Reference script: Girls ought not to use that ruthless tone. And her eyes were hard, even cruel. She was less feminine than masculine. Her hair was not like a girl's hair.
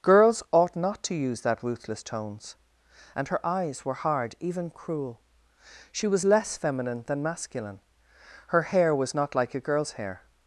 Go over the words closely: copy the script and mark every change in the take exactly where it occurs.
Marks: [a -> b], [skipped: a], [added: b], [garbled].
Girls ought not to use that ruthless [tone. -> tones] And her eyes were hard, even cruel. She was less feminine than masculine. Her hair was not like a girl's hair.